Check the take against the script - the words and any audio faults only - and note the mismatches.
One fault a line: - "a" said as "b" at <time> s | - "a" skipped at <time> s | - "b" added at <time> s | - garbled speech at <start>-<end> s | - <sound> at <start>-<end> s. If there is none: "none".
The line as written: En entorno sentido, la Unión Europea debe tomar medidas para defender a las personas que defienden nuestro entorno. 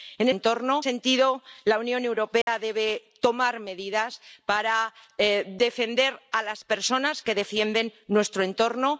- dropout at 2.4-2.5 s